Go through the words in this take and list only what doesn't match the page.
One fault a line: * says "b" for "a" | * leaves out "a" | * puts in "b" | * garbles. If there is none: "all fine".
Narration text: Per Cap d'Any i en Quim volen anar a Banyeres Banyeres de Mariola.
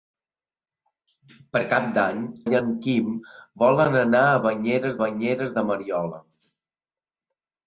all fine